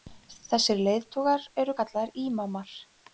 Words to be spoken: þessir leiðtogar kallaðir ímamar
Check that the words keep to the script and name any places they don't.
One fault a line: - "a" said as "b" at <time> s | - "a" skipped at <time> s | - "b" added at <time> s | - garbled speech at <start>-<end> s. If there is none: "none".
- "eru" added at 1.6 s